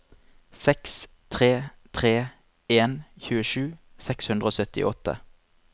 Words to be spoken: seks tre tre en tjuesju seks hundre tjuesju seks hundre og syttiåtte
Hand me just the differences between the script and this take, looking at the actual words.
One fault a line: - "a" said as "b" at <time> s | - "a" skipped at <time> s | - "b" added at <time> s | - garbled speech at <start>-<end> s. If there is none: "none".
- "tjuesju seks hundre" skipped at 4.5 s